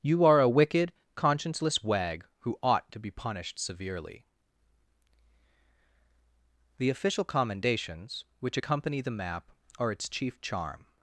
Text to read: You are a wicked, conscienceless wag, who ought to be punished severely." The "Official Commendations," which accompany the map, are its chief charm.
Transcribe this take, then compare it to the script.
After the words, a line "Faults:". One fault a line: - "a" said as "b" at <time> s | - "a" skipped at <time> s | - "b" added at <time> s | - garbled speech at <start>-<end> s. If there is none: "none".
You are a wicked, conscienceless wag, who ought to be punished severely." The "Official Commendations," which accompany the map, are its chief charm.
Faults:
none